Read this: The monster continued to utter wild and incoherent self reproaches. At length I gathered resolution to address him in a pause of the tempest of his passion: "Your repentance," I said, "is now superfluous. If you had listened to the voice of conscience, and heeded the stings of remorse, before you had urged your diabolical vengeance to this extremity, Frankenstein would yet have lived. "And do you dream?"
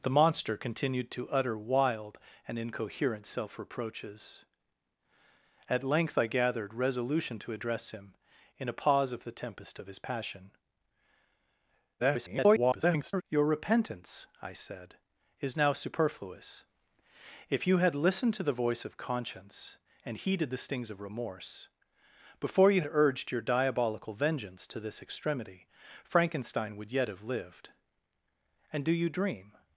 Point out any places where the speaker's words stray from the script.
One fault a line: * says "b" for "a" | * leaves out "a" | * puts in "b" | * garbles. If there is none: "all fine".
* garbles
* leaves out "had"